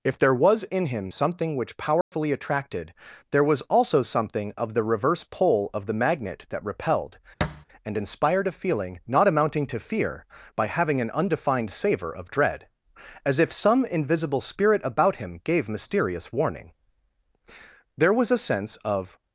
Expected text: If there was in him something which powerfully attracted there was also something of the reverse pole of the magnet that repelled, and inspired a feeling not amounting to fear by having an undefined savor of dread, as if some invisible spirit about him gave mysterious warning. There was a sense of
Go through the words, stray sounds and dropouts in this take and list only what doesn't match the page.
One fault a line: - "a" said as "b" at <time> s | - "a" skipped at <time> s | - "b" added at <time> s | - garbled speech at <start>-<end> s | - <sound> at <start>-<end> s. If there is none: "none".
- dropout at 2.0-2.1 s
- thud at 7.4-7.7 s